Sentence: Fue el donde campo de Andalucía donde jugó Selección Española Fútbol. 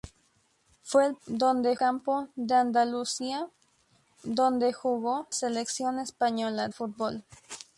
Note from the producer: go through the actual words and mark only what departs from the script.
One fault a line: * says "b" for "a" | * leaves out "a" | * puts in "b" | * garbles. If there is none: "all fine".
all fine